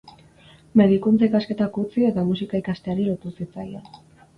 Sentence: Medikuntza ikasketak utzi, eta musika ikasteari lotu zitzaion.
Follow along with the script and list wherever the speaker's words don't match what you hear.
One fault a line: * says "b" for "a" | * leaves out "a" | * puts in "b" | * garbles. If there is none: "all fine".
all fine